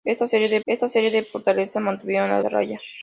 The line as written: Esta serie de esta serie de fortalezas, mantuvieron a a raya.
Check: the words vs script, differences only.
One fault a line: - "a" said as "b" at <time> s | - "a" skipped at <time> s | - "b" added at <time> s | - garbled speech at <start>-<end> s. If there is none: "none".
none